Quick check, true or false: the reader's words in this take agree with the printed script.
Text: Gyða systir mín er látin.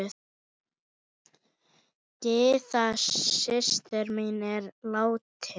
true